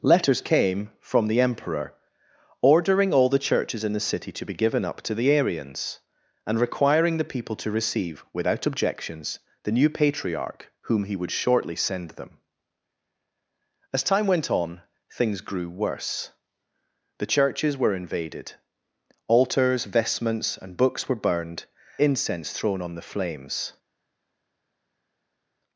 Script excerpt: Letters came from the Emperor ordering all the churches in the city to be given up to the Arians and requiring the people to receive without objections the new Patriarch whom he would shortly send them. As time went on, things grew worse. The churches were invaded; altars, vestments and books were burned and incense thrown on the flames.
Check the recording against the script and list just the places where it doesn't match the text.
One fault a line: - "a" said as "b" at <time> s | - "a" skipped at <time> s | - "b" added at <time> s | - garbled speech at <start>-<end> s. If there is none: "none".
- "and" skipped at 21.7 s